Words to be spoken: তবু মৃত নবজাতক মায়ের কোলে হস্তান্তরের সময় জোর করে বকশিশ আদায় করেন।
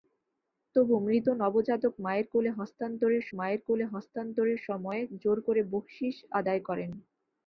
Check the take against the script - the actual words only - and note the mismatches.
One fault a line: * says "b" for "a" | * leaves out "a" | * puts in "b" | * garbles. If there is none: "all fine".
* puts in "মায়ের কোলে হস্তান্তরের"